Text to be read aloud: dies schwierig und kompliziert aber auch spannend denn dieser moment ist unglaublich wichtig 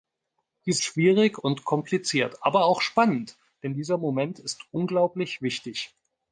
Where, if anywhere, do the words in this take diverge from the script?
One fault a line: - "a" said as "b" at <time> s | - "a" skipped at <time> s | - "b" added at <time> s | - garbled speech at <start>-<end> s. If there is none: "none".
none